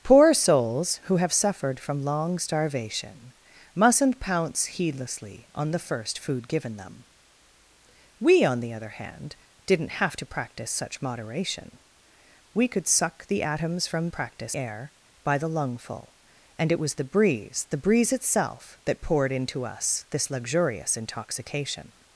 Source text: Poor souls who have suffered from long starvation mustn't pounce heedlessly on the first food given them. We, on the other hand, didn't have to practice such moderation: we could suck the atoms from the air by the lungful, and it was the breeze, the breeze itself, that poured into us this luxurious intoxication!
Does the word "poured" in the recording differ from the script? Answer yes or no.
no